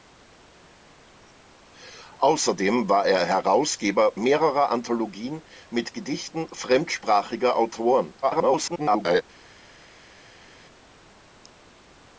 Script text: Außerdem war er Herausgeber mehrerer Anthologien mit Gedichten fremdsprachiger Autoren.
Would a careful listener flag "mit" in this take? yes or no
no